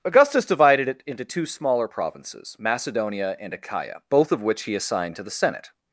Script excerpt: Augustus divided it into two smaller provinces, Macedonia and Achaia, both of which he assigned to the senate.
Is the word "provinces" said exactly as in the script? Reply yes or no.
yes